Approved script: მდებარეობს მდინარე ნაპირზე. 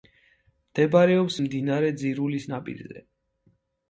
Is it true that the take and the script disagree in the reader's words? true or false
true